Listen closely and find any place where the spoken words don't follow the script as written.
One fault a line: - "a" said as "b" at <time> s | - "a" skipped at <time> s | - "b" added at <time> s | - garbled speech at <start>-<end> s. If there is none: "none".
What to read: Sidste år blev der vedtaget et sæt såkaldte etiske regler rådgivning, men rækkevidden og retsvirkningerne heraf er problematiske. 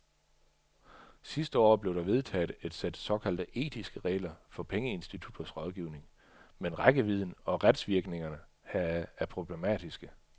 - "for pengeinstitutters" added at 4.5 s